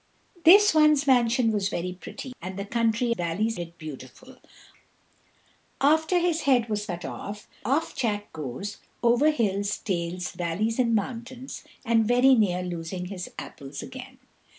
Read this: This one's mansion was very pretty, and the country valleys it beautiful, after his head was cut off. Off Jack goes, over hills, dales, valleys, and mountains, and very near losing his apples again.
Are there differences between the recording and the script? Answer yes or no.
no